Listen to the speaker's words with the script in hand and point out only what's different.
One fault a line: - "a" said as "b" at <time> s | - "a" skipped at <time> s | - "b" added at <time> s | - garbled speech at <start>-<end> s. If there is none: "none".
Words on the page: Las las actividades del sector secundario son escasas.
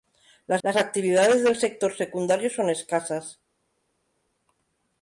none